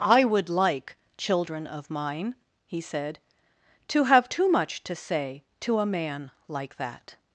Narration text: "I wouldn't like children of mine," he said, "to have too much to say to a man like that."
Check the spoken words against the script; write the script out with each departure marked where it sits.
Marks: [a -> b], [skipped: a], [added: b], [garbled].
"I [wouldn't -> would] like children of mine," he said, "to have too much to say to a man like that."